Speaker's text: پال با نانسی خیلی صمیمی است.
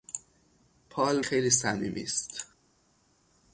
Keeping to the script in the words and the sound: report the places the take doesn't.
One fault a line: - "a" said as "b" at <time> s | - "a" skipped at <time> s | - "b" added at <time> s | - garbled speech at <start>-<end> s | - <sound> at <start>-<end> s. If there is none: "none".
- "با نانسی" skipped at 1.2 s